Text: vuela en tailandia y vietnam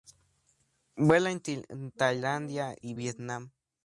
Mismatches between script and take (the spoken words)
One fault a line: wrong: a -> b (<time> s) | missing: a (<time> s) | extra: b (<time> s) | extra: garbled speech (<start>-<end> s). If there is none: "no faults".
no faults